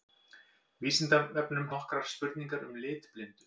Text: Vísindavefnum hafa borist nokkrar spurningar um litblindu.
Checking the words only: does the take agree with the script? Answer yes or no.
no